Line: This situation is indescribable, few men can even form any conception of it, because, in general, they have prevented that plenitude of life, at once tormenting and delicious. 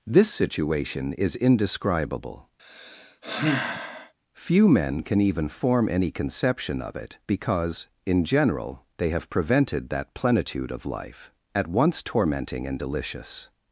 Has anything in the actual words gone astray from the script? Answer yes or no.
no